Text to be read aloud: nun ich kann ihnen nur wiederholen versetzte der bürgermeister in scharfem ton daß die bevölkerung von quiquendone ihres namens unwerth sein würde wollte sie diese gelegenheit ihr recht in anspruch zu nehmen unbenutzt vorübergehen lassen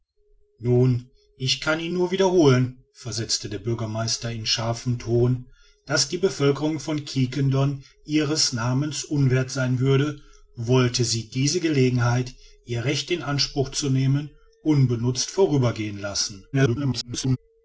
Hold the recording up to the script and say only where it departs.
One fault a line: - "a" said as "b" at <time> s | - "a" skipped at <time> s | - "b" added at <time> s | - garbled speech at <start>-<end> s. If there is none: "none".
- garbled speech at 16.5-17.4 s